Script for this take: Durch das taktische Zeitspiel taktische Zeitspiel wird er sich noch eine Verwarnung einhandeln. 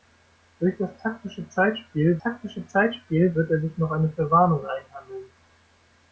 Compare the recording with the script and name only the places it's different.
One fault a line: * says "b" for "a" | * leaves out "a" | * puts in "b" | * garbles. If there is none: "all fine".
all fine